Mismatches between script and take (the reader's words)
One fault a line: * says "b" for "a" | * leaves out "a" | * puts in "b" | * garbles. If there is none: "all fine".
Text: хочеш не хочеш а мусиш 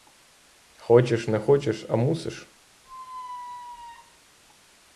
all fine